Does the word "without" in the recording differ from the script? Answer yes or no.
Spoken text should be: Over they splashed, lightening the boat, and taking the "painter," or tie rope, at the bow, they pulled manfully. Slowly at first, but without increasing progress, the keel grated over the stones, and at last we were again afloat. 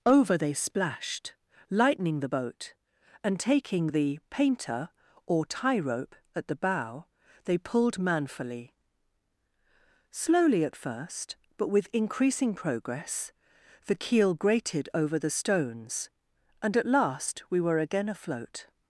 yes